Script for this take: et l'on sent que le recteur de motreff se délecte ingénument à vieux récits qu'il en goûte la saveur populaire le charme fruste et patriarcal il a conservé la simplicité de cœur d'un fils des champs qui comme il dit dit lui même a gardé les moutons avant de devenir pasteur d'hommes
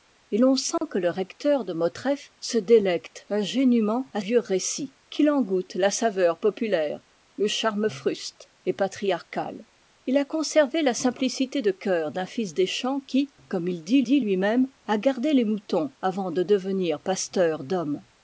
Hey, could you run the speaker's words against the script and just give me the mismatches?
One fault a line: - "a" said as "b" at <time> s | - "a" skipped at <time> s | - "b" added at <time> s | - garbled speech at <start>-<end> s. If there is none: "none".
none